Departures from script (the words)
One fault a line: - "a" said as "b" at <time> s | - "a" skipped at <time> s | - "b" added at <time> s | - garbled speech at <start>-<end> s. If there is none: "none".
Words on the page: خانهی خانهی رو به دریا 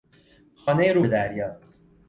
- "خانهی" skipped at 0.9 s